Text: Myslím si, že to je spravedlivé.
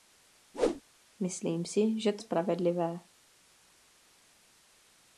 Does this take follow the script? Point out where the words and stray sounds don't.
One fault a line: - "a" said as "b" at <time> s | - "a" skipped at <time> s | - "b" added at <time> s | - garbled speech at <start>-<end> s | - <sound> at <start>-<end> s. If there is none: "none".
- whoosh at 0.5-0.8 s
- "je" skipped at 2.2 s